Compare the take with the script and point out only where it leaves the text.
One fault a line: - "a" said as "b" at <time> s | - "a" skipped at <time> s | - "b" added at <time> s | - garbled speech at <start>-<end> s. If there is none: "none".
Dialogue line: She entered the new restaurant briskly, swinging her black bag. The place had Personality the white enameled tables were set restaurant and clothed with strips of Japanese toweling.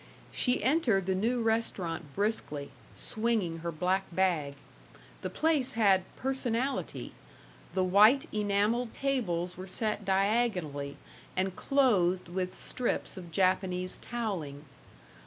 - "restaurant" said as "diagonally" at 10.0 s